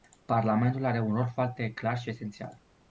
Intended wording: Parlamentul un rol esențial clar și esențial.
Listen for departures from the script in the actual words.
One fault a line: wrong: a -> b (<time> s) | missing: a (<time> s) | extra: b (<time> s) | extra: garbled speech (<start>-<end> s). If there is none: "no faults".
extra: are (0.8 s)
wrong: esențial -> foarte (1.3 s)